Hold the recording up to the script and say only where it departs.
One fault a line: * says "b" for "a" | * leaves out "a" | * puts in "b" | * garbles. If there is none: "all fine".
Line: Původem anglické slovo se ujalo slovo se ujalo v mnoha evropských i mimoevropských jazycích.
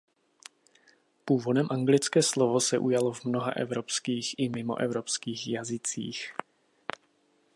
* leaves out "slovo se ujalo"